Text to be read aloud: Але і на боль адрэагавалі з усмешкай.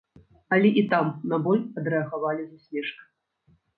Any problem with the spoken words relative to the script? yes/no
yes